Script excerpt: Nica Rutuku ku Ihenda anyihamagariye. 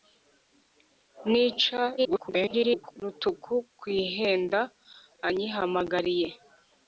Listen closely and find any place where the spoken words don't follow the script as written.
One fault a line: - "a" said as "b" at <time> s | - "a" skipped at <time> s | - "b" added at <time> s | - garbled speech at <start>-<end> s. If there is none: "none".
- garbled speech at 2.0-3.0 s